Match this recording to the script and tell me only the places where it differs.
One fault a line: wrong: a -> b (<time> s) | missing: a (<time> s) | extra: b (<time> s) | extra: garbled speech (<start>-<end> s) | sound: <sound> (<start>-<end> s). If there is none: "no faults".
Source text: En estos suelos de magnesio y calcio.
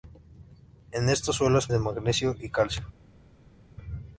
no faults